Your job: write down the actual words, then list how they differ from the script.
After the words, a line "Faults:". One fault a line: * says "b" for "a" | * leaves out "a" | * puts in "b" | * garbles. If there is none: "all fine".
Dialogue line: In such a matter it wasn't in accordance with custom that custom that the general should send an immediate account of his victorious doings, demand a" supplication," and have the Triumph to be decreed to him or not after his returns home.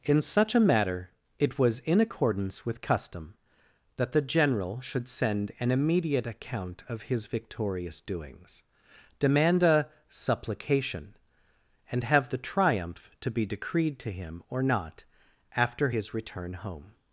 In such a matter it was in accordance with custom that the general should send an immediate account of his victorious doings, demand a" supplication," and have the Triumph to be decreed to him or not after his return home.
Faults:
* says "was" for "wasn't"
* leaves out "custom that"
* says "return" for "returns"